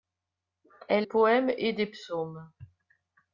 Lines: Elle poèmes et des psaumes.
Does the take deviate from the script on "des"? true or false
false